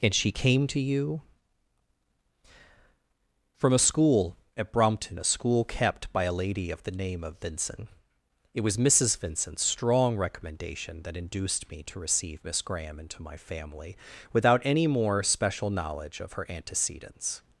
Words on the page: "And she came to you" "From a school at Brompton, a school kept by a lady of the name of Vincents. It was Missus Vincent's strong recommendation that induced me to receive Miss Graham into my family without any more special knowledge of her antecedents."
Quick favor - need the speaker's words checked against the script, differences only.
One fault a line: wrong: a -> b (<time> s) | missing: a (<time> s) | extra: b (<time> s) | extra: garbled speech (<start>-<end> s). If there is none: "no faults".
wrong: Vincents -> Vincent (7.4 s)